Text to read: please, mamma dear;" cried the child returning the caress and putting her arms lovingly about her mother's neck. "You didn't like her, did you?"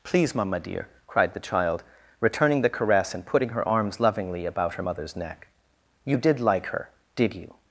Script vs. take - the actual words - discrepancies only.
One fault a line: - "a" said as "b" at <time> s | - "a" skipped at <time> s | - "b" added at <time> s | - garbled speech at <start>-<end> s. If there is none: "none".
- "didn't" said as "did" at 6.2 s